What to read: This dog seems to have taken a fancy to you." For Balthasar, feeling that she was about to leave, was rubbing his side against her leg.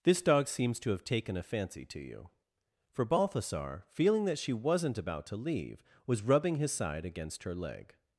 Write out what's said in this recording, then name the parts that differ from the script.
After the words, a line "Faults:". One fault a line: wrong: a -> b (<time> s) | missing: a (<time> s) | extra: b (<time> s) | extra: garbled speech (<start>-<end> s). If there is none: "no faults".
This dog seems to have taken a fancy to you." For Balthasar, feeling that she wasn't about to leave, was rubbing his side against her leg.
Faults:
wrong: was -> wasn't (4.5 s)